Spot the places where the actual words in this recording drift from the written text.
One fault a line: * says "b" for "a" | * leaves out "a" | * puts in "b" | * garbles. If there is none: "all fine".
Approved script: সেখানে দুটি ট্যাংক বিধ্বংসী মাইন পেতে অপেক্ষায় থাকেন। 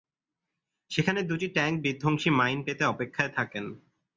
all fine